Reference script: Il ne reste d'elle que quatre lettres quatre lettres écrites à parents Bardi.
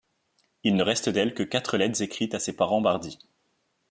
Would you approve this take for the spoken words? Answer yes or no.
no